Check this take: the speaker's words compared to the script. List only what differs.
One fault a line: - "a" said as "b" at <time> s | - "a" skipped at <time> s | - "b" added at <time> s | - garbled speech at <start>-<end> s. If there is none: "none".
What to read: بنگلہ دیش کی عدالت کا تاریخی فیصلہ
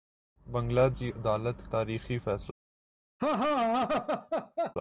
- "دیش" skipped at 0.9 s
- "کا" skipped at 1.7 s